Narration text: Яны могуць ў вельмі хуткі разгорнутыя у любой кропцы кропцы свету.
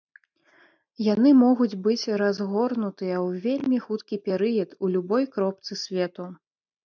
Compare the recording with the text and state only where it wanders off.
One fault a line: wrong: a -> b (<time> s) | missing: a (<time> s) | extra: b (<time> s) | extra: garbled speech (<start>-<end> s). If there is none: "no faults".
extra: быць разгорнутыя (1.9 s)
wrong: разгорнутыя -> перыяд (4.3 s)
missing: кропцы (5.7 s)